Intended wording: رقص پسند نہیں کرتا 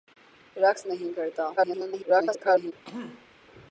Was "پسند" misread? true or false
true